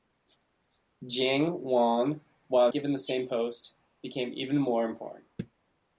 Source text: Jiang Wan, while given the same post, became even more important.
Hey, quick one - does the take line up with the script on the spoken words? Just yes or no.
yes